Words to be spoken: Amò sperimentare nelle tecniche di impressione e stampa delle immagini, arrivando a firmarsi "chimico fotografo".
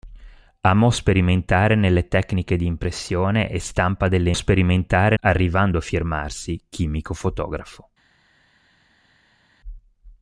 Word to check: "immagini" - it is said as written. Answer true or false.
false